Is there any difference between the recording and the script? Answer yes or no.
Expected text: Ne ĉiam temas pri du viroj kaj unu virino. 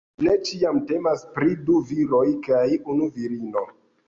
no